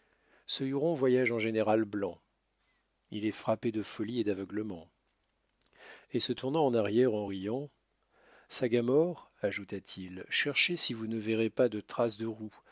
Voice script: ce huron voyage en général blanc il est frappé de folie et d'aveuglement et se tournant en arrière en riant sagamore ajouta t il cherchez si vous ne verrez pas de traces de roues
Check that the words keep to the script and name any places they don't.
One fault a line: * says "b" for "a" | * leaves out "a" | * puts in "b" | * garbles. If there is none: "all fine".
all fine